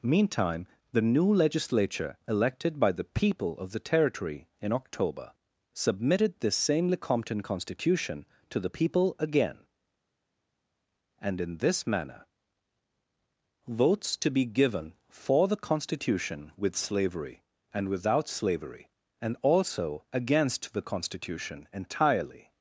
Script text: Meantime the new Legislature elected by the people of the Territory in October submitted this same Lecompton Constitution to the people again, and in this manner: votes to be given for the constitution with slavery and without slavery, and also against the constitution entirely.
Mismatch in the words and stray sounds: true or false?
false